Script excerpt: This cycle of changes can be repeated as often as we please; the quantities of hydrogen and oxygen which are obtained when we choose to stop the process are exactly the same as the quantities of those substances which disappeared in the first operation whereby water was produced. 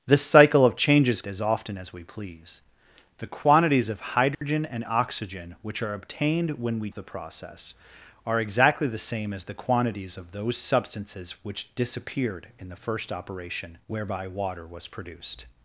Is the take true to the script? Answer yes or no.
no